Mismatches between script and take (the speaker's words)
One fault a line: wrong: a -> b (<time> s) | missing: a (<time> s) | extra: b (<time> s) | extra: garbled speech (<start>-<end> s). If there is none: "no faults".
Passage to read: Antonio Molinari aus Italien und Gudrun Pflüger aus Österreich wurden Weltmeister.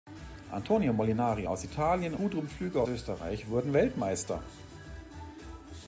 missing: und (2.2 s)
missing: aus (2.8 s)